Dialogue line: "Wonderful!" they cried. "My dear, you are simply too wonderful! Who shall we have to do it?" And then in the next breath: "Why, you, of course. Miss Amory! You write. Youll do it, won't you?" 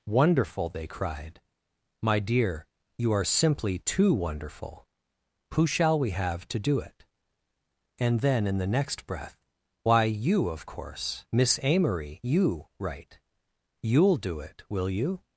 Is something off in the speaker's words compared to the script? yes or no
yes